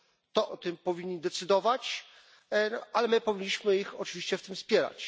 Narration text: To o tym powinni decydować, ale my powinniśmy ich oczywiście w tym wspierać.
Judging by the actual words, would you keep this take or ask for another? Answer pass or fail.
pass